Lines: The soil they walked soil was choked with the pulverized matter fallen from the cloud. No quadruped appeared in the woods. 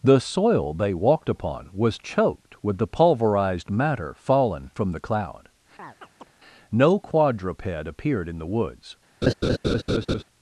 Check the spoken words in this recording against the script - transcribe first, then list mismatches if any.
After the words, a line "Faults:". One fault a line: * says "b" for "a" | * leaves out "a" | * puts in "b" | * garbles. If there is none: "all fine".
The soil they walked upon was choked with the pulverized matter fallen from the cloud. No quadruped appeared in the woods.
Faults:
* says "upon" for "soil"